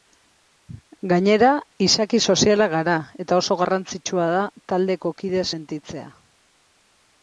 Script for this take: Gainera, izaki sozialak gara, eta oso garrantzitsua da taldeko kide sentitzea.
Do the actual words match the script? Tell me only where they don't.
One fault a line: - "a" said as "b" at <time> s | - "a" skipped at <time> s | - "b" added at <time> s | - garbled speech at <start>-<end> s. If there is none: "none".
none